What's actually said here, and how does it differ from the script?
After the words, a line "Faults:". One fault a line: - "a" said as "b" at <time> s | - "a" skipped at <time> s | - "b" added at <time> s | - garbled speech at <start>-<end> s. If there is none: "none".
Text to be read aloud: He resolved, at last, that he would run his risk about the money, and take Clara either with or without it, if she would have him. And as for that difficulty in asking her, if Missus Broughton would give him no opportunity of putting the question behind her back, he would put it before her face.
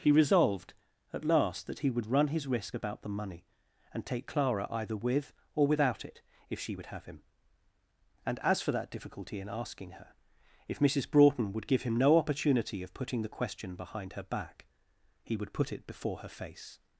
He resolved, at last, that he would run his risk about the money, and take Clara either with or without it, if she would have him. And as for that difficulty in asking her, if Missus Broughton would give him no opportunity of putting the question behind her back, he would put it before her face.
Faults:
none